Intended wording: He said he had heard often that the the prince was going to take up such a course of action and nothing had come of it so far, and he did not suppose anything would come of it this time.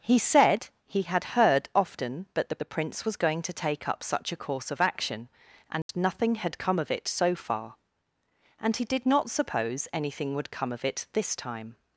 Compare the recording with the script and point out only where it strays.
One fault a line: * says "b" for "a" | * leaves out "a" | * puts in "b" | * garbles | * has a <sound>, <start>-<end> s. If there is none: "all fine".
* has a dropout, 5.8-5.9 s